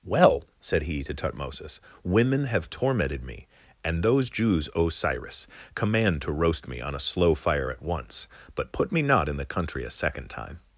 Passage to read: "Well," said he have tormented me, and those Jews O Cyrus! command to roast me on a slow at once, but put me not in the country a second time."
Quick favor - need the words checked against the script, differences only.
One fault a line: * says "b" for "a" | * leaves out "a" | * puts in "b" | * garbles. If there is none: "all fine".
* puts in "to Tutmosis women"
* puts in "fire"